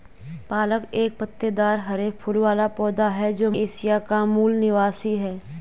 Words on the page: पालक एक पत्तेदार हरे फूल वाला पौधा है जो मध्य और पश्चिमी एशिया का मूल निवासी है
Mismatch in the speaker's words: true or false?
true